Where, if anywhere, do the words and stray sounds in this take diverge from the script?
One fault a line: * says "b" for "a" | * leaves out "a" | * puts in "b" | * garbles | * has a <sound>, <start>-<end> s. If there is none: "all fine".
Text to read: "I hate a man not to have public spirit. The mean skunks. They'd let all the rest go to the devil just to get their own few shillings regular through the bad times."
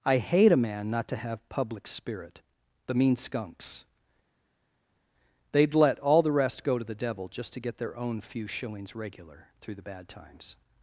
all fine